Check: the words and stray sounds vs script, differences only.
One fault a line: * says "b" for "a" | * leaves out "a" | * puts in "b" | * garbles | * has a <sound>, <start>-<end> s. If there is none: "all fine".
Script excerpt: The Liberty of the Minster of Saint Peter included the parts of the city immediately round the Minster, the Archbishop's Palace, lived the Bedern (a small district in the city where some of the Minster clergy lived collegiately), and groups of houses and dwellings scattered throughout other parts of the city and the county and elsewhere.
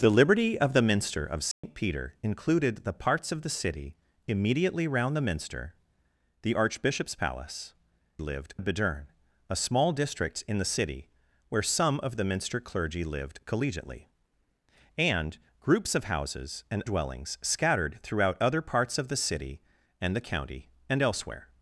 * has a dropout, 1.5-1.6 s